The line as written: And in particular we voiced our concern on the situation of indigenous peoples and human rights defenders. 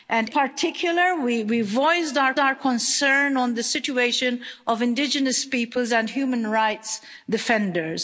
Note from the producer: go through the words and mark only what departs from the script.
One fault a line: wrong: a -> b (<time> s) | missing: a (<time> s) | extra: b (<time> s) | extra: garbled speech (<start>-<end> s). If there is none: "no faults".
missing: in (0.3 s)
extra: our (2.4 s)